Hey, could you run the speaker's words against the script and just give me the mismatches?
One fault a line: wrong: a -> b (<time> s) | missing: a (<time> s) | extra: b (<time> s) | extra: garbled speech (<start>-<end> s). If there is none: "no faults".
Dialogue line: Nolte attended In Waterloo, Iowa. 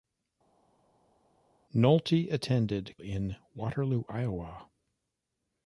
no faults